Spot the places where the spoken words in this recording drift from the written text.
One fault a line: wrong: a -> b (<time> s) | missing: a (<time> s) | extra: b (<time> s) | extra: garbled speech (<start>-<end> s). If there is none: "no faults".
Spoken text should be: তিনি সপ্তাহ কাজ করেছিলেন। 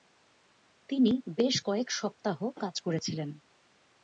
extra: বেশ কয়েক (1.4 s)